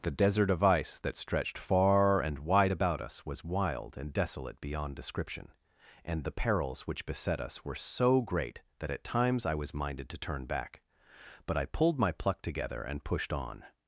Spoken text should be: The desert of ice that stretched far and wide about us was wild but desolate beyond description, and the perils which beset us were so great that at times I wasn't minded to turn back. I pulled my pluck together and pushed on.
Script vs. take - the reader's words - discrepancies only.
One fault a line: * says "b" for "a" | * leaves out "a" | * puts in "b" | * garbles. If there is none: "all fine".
* says "and" for "but"
* says "was" for "wasn't"
* puts in "But"